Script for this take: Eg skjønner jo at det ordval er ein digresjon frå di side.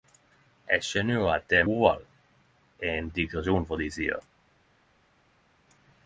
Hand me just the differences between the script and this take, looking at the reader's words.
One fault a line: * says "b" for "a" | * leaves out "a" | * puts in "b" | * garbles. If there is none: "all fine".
all fine